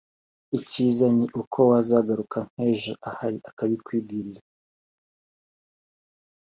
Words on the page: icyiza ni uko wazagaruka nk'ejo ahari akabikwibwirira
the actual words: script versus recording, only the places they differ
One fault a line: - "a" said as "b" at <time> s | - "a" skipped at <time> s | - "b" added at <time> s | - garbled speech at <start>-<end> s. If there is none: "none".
none